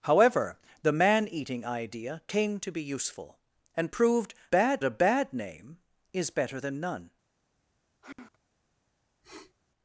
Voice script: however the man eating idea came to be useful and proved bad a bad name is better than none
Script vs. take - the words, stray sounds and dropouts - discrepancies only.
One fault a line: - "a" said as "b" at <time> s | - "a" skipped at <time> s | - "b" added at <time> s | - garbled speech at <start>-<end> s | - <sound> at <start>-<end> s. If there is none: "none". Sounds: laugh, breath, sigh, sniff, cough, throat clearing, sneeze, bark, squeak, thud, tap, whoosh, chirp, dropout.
- sigh at 8.0-8.4 s
- sniff at 9.2-9.5 s